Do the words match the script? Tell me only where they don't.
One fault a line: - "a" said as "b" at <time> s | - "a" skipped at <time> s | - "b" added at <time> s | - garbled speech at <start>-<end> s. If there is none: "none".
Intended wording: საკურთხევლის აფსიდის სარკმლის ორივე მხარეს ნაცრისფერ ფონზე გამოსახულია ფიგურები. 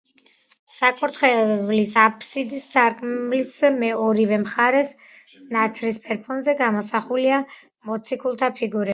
- "მოციქულთა" added at 7.9 s